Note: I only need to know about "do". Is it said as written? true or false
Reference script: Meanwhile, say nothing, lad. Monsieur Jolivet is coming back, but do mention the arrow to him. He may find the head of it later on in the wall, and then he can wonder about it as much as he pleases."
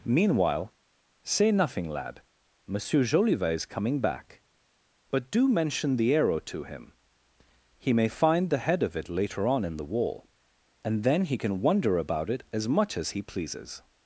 true